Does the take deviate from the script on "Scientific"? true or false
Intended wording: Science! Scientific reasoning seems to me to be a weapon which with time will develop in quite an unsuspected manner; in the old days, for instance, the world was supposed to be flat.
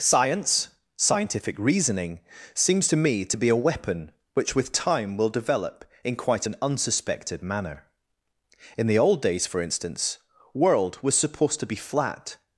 false